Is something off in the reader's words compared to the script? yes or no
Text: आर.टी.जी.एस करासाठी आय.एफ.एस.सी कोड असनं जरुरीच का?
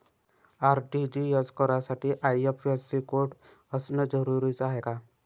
yes